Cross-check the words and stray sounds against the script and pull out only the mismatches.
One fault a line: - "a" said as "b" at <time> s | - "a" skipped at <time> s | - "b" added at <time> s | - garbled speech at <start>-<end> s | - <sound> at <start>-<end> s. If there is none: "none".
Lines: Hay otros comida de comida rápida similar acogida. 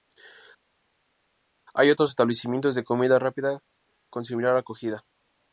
- "comida" said as "establecimientos" at 2.1 s
- "con" added at 4.1 s